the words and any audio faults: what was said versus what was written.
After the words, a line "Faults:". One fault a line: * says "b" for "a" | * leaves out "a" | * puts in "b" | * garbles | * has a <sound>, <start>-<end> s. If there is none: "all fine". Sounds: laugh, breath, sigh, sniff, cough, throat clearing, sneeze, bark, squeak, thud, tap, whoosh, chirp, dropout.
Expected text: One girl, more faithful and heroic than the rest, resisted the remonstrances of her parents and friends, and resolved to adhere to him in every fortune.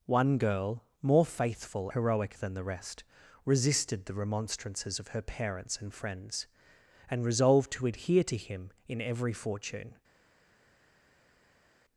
One girl, more faithful heroic than the rest, resisted the remonstrances of her parents and friends, and resolved to adhere to him in every fortune.
Faults:
* leaves out "and"